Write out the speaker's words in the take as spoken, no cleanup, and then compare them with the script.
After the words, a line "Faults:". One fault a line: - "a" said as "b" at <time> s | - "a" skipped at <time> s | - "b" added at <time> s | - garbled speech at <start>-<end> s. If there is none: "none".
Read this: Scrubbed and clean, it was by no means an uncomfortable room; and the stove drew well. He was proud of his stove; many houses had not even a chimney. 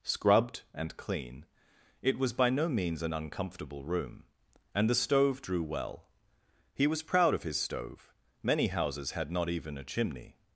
Scrubbed and clean, it was by no means an uncomfortable room; and the stove drew well. He was proud of his stove; many houses had not even a chimney.
Faults:
none